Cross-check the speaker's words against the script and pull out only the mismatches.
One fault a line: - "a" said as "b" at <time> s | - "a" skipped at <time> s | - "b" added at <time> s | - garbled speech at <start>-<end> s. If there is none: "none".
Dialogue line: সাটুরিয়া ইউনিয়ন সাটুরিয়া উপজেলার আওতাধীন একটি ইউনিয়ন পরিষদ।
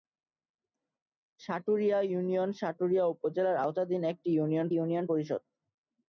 - "ইউনিয়ন" added at 4.7 s